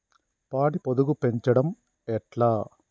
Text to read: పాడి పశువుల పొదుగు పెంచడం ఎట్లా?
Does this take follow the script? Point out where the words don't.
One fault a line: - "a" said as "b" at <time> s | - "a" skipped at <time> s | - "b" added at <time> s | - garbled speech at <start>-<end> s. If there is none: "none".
- "పశువుల" skipped at 0.8 s